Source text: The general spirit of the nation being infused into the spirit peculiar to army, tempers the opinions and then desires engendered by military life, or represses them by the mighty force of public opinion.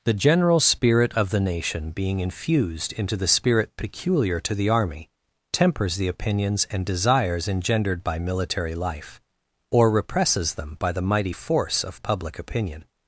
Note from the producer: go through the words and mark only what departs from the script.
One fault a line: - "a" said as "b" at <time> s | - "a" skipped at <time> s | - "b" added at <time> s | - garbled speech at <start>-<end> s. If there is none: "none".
- "the" added at 4.5 s
- "then" skipped at 6.8 s